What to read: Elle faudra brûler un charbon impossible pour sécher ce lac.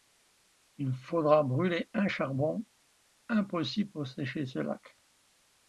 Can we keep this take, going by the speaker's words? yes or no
no